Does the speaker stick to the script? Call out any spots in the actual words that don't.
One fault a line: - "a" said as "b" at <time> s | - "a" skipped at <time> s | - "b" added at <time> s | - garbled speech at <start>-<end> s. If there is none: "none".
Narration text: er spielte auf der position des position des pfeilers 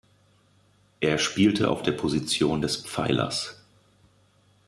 - "position des" skipped at 2.8 s